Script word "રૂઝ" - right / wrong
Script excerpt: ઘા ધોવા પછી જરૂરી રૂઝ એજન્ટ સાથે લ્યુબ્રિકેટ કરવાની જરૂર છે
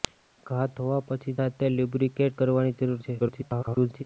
wrong